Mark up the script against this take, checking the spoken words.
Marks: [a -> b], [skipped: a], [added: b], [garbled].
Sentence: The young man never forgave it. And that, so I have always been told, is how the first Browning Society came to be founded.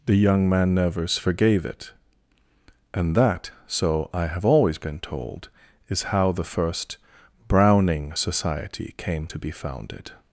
The young man [never -> nevers] forgave it. And that, so I have always been told, is how the first Browning Society came to be founded.